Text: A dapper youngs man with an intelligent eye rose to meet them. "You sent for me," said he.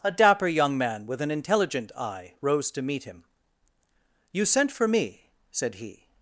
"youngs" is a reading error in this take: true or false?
true